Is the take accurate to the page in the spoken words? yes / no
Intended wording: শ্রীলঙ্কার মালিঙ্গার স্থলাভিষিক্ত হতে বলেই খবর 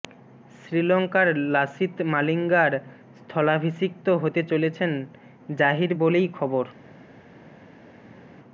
no